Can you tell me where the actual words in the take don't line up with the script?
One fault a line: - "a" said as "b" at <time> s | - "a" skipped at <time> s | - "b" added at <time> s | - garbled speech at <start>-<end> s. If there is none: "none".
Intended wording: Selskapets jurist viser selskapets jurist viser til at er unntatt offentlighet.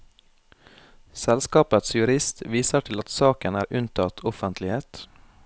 - "selskapets jurist viser" skipped at 2.9 s
- "saken" added at 3.1 s